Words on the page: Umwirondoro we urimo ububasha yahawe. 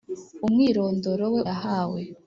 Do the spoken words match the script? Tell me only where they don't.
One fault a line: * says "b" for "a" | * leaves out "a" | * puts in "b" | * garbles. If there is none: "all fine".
* leaves out "urimo ububasha"